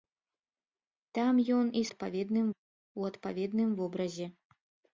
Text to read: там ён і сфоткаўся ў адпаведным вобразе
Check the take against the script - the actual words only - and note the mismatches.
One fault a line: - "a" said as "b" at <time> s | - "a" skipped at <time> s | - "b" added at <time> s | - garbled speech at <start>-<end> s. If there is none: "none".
- "сфоткаўся" said as "адпаведным" at 1.9 s